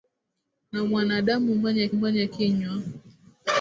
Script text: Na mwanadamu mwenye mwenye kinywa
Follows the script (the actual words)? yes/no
yes